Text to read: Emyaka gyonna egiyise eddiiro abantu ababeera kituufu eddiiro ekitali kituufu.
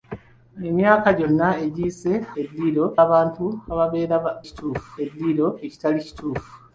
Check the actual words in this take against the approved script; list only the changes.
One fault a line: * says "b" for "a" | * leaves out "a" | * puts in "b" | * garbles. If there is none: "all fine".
all fine